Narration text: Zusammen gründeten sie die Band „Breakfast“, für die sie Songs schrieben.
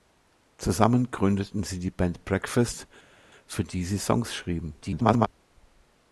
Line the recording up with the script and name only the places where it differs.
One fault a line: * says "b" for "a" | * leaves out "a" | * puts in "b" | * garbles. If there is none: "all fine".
* garbles